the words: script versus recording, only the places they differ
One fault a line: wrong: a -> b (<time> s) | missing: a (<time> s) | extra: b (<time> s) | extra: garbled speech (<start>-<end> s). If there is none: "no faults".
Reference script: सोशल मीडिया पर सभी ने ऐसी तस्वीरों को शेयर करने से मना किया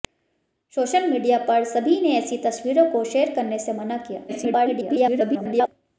extra: garbled speech (4.3-5.7 s)